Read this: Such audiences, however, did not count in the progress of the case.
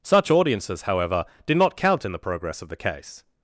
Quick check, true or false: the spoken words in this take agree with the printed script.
true